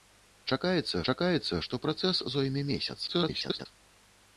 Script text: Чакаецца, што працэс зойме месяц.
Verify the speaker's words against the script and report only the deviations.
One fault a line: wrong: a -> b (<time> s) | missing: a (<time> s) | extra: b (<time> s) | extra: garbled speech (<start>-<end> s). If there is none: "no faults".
extra: чакаецца (1.1 s)
extra: garbled speech (3.1-3.7 s)